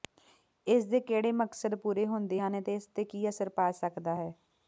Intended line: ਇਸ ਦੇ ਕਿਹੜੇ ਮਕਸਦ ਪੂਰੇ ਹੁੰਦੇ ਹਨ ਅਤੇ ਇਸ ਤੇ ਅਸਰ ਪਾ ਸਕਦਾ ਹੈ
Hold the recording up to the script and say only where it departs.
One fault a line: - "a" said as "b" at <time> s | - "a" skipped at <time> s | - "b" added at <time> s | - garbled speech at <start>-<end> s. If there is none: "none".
- "ਕੀ" added at 3.1 s